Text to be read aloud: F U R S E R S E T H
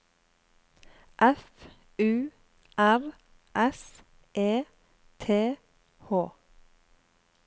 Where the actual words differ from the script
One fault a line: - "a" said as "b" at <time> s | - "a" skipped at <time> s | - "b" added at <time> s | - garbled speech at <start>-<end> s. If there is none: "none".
- "R S E" skipped at 4.6 s